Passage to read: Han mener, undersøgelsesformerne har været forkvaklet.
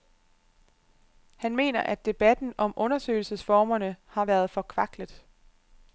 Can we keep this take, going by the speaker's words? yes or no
no